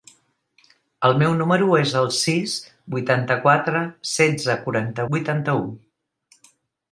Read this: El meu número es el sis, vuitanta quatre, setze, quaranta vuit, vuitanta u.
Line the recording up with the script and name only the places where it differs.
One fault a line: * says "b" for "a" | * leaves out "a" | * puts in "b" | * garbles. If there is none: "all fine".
* leaves out "vuit"